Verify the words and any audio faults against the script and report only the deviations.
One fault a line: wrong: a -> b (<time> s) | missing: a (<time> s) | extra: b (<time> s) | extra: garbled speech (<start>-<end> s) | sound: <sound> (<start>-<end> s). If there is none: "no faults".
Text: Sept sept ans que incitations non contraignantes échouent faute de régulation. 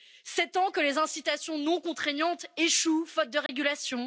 missing: sept (0.6 s)
extra: les (0.8 s)
sound: dropout (3.5-3.5 s)